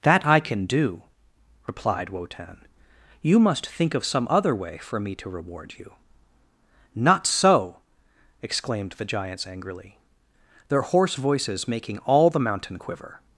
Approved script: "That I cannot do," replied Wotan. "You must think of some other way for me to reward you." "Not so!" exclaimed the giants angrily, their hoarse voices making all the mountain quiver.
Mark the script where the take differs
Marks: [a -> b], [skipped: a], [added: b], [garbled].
"That I [cannot -> can] do," replied Wotan. "You must think of some other way for me to reward you." "Not so!" exclaimed the giants angrily, their hoarse voices making all the mountain quiver.